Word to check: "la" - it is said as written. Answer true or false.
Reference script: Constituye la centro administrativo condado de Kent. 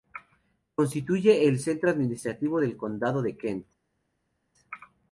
false